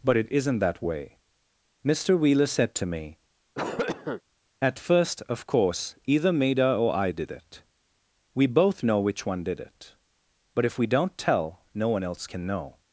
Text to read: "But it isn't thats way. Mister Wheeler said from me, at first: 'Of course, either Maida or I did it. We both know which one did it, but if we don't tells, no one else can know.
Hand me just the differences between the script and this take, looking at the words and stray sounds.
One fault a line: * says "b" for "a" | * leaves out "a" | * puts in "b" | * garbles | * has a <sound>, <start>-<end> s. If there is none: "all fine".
* says "that" for "thats"
* says "to" for "from"
* has a cough, 3.6-4.2 s
* says "tell" for "tells"